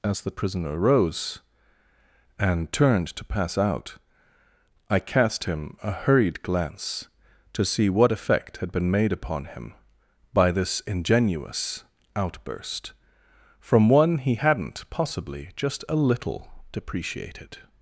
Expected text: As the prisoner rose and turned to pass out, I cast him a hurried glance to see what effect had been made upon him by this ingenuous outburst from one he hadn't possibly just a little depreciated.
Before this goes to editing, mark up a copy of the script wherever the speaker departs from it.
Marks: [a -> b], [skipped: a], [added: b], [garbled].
As the prisoner rose and turned to pass out, I cast him a hurried glance to see what effect had been made upon him by this ingenuous outburst from one he hadn't possibly just a little depreciated.